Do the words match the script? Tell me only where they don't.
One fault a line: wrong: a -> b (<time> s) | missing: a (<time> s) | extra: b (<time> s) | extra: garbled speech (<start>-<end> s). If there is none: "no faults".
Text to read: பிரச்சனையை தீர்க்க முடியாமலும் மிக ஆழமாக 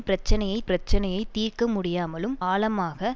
extra: பிரச்சனையை (0.6 s)
missing: மிக (2.4 s)